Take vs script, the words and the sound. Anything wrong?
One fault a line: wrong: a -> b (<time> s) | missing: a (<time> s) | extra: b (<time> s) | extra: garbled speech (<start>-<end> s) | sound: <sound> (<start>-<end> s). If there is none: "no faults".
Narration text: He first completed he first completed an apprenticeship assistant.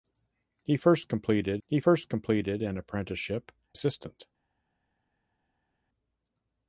no faults